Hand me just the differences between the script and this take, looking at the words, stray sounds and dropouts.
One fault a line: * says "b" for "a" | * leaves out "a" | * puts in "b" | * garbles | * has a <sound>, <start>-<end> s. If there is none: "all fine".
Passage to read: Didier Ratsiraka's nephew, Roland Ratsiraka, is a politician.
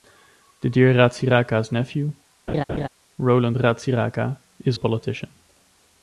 * has a laugh, 2.5-2.9 s